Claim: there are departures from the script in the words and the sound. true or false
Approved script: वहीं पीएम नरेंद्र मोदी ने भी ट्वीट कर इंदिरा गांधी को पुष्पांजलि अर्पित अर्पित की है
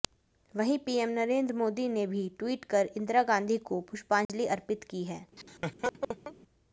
true